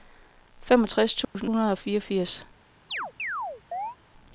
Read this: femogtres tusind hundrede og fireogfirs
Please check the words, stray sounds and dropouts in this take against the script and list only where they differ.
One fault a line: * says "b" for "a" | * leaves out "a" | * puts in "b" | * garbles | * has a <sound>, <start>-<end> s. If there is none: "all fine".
* has a dropout, 1.2-1.3 s
* has a chirp, 2.9-4.0 s